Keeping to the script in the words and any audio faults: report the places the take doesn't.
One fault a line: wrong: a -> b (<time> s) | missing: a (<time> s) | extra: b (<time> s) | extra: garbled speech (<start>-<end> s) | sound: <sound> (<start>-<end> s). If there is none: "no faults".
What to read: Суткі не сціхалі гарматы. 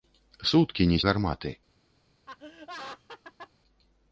missing: сціхалі (1.0 s)
sound: laugh (2.3-3.5 s)